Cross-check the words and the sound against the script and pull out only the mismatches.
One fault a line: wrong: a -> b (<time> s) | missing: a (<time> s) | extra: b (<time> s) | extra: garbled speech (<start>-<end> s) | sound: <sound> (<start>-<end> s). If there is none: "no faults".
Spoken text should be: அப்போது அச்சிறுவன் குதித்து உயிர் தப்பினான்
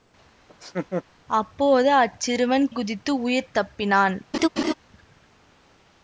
sound: laugh (0.5-1.0 s)
sound: laugh (4.3-4.7 s)